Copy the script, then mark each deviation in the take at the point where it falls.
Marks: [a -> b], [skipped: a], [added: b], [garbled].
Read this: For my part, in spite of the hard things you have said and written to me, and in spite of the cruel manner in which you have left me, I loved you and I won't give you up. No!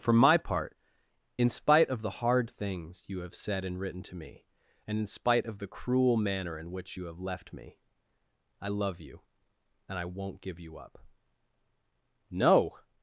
For my part, in spite of the hard things you have said and written to me, and in spite of the cruel manner in which you have left me, I [loved -> love] you and I won't give you up. No!